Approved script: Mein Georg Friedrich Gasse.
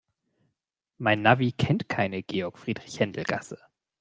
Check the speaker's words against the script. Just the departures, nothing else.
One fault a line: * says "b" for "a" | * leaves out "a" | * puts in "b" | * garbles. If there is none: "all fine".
* puts in "Navi kennt keine"
* puts in "Händel"